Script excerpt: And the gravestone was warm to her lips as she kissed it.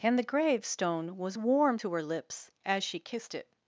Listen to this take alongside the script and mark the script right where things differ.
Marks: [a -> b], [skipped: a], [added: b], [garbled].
And the gravestone was warm to her lips as she kissed it.